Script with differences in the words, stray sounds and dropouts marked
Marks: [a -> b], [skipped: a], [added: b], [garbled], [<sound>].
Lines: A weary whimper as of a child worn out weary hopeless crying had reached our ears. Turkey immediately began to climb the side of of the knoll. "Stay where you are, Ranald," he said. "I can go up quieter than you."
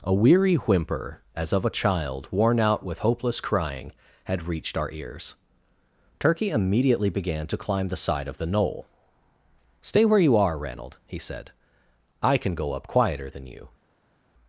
A weary whimper as of a child worn out [weary -> with] hopeless crying had reached our ears. Turkey immediately began to climb the side of [skipped: of] the knoll. "Stay where you are, Ranald," he said. "I can go up quieter than you."